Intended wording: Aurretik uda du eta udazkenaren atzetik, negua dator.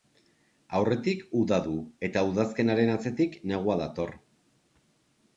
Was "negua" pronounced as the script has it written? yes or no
yes